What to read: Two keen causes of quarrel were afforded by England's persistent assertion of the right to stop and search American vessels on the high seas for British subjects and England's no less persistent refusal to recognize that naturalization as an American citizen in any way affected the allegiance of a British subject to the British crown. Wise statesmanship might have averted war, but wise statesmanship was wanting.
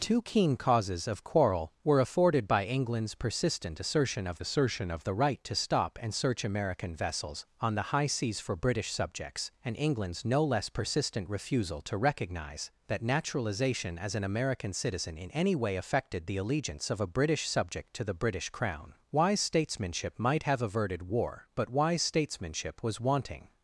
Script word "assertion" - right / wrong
right